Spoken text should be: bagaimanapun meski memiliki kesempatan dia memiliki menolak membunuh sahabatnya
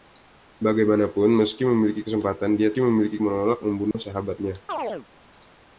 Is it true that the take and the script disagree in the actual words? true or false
false